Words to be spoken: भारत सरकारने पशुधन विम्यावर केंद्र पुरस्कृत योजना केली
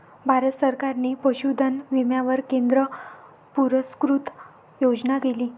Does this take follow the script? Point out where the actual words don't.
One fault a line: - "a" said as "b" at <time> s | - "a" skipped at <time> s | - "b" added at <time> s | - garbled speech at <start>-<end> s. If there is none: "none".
none